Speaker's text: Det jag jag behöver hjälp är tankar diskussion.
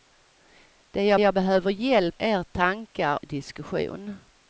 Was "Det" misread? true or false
false